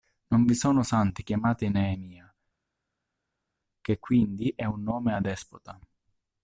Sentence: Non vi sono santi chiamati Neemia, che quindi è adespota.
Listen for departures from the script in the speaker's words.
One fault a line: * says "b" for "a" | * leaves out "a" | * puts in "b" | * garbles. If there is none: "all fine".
* puts in "un nome"